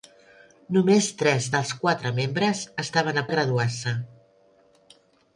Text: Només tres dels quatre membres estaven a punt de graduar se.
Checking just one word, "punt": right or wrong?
wrong